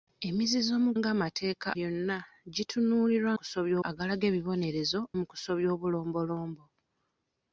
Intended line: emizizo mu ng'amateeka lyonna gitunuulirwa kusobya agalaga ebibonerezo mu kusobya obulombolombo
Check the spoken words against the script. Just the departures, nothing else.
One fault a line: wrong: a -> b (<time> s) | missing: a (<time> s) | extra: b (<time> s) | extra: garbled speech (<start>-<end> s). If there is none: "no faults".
no faults